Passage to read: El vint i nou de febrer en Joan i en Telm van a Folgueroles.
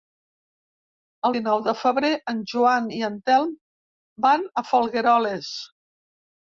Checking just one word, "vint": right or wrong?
wrong